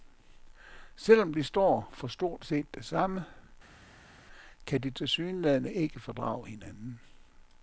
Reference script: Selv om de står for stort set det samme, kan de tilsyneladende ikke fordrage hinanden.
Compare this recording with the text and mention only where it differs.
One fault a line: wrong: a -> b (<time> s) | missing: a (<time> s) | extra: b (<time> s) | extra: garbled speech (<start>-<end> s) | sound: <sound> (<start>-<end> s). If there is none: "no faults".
no faults